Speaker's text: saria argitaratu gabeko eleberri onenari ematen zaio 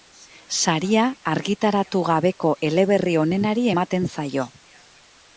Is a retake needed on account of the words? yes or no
no